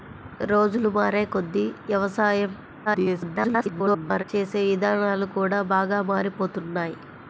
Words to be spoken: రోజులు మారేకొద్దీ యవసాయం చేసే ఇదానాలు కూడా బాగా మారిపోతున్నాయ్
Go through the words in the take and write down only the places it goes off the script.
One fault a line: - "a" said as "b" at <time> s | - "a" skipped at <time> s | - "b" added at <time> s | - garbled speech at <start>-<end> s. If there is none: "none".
- garbled speech at 2.9-4.2 s